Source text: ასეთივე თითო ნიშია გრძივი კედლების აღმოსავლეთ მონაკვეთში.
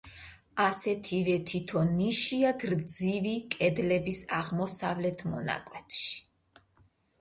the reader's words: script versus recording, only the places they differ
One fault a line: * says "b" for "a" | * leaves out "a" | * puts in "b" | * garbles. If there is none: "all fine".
all fine